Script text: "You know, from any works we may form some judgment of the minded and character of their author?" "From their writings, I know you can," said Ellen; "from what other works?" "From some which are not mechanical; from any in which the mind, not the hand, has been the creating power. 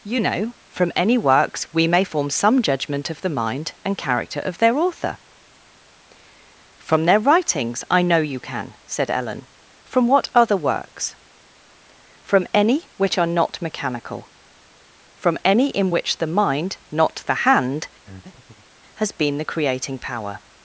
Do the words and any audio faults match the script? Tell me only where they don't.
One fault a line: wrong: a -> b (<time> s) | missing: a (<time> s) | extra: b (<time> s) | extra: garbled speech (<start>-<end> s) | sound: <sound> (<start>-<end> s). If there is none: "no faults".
wrong: minded -> mind (3.3 s)
wrong: some -> any (12.5 s)
sound: breath (18.1-18.7 s)